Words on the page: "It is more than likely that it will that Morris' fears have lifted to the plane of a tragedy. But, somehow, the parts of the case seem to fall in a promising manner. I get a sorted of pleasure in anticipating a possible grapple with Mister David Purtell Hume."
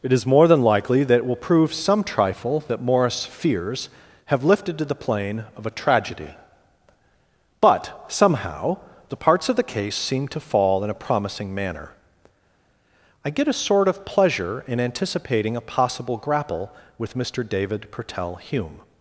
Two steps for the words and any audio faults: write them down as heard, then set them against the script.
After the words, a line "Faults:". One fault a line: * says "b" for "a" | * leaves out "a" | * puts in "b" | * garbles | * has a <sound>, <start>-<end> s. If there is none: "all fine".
"It is more than likely that it will prove some trifle that Morris' fears have lifted to the plane of a tragedy. But, somehow, the parts of the case seem to fall in a promising manner. I get a sort of pleasure in anticipating a possible grapple with Mister David Purtell Hume."
Faults:
* puts in "prove some trifle"
* says "sort" for "sorted"